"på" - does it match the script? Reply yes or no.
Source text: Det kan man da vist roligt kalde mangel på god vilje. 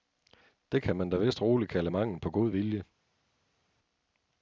yes